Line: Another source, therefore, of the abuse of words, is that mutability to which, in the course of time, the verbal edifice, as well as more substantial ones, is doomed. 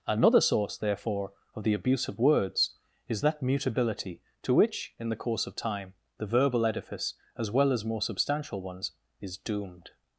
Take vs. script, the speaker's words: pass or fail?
pass